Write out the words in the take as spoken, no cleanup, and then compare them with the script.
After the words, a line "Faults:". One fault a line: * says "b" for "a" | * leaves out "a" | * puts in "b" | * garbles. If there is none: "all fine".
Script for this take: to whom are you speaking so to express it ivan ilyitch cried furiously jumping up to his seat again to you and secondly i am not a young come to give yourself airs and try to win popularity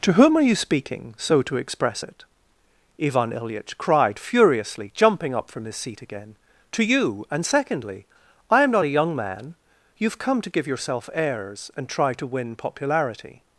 to whom are you speaking so to express it ivan ilyitch cried furiously jumping up from his seat again to you and secondly i am not a young man you've come to give yourself airs and try to win popularity
Faults:
* says "from" for "to"
* puts in "man you've"